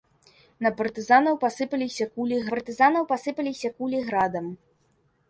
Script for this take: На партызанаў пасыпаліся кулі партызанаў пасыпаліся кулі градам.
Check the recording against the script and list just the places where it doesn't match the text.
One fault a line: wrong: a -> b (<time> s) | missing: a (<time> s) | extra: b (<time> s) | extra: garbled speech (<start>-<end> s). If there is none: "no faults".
no faults